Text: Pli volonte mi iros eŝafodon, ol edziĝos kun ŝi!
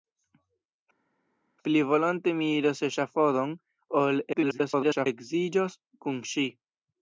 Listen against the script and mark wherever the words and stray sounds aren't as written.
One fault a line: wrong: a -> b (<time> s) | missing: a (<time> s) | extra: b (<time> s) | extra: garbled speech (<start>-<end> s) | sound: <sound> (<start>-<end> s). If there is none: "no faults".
extra: garbled speech (4.3-5.1 s)